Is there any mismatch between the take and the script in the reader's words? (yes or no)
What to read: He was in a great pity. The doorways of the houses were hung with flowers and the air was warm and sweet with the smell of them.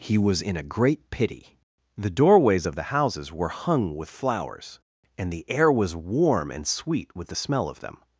no